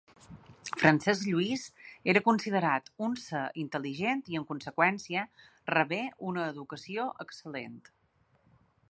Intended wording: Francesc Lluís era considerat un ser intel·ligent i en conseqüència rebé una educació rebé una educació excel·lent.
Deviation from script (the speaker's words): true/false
true